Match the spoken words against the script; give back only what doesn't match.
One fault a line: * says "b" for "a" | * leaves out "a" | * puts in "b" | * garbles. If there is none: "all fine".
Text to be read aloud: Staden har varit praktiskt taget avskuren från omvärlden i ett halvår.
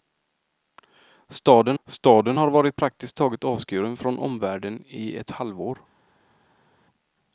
* puts in "staden"